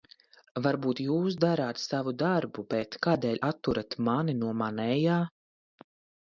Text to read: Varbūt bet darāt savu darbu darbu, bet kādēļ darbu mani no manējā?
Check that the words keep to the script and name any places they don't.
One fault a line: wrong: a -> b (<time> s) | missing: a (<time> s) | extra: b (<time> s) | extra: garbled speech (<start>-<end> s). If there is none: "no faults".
wrong: bet -> jūs (1.0 s)
missing: darbu (2.6 s)
wrong: darbu -> atturat (3.5 s)